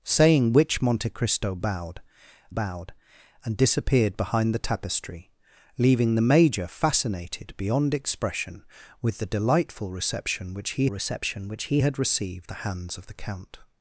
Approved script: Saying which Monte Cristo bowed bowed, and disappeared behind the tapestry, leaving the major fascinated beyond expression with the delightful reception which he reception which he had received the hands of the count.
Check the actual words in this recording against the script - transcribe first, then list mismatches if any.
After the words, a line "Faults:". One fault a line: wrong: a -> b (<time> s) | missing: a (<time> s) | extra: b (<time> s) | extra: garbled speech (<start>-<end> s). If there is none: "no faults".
Saying which Monte Cristo bowed bowed, and disappeared behind the tapestry, leaving the major fascinated beyond expression with the delightful reception which he reception which he had received the hands of the count.
Faults:
no faults